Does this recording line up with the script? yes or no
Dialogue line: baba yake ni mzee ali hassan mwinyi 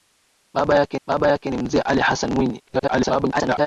no